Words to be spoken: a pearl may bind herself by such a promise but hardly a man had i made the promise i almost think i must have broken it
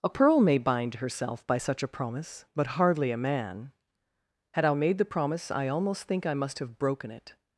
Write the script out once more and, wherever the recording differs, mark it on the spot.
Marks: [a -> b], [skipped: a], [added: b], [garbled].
a pearl may bind herself by such a promise but hardly a man had i made the promise i almost think i must have broken it